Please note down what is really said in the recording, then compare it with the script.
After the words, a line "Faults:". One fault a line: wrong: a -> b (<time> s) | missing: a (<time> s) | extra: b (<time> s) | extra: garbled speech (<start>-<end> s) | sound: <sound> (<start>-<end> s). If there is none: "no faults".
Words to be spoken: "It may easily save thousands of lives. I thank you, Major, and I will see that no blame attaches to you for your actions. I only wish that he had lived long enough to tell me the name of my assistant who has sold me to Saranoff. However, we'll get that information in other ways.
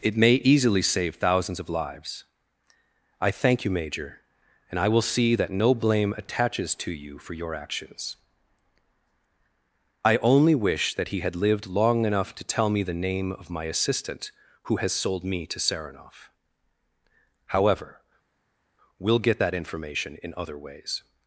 "It may easily save thousands of lives. I thank you, Major, and I will see that no blame attaches to you for your actions. I only wish that he had lived long enough to tell me the name of my assistant who has sold me to Saranoff. However, we'll get that information in other ways.
Faults:
no faults